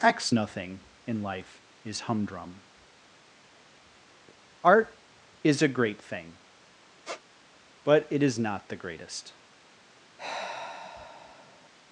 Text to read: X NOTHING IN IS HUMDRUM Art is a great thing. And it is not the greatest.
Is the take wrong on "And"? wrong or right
wrong